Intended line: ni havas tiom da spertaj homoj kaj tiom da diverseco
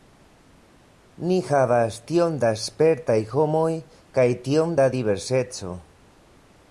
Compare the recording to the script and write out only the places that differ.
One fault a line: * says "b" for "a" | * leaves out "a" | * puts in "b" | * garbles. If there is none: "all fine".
all fine